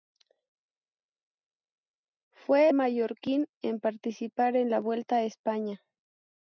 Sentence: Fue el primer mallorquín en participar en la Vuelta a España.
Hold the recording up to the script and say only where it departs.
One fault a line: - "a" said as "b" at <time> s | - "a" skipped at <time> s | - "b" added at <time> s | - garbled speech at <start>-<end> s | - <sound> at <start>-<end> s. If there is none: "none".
- "el primer" skipped at 2.7 s